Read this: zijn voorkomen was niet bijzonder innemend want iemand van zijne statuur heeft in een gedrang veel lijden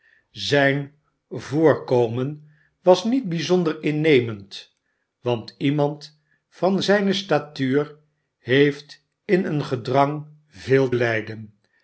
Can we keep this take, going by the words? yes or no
yes